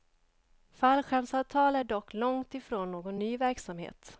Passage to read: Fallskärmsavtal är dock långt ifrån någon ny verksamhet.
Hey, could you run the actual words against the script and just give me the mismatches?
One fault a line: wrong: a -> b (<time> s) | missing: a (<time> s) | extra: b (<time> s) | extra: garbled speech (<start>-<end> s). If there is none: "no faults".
no faults